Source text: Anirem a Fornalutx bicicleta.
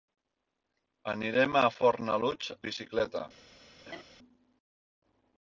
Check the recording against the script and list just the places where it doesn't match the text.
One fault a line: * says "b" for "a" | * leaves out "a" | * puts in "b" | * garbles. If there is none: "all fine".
all fine